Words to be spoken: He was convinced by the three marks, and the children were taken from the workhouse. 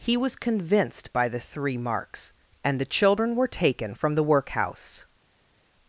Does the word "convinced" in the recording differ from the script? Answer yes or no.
no